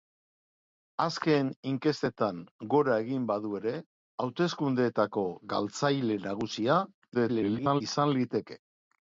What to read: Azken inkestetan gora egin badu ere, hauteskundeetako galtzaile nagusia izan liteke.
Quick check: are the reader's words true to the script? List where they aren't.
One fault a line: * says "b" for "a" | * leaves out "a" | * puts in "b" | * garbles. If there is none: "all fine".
* garbles